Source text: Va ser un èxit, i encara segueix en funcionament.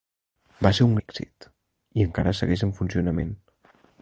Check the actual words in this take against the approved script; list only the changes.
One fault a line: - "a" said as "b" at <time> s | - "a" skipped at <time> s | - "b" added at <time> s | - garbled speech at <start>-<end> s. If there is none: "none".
none